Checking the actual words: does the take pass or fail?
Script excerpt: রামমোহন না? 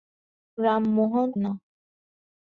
pass